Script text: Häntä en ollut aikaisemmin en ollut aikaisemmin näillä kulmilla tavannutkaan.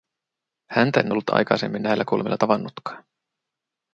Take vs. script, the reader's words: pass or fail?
fail